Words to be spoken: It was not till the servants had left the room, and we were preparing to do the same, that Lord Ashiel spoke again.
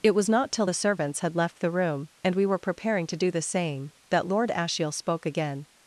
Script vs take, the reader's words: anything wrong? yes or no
no